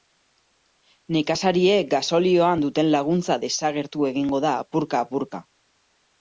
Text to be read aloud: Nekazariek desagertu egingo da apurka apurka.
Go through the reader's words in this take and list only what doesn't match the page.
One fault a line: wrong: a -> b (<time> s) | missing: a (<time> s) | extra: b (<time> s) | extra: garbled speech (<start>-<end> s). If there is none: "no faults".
extra: gasolioan duten laguntza (1.9 s)